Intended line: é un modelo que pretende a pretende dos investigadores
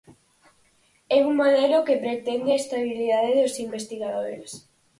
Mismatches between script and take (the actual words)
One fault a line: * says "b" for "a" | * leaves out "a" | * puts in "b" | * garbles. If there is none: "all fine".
* says "estabilidade" for "pretende"